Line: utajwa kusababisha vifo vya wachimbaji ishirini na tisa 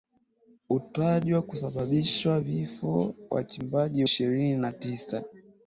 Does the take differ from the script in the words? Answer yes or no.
no